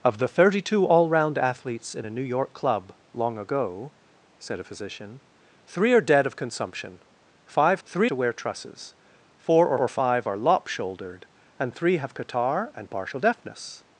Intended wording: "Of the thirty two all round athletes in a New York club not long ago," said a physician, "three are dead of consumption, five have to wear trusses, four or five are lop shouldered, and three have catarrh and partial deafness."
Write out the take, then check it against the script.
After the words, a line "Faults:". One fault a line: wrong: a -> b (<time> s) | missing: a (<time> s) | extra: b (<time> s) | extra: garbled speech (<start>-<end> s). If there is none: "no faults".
"Of the thirty two all round athletes in a New York club long ago," said a physician, "three are dead of consumption, five three to wear trusses, four or or five are lop shouldered, and three have catarrh and partial deafness."
Faults:
missing: not (2.9 s)
wrong: have -> three (7.8 s)
extra: or (9.8 s)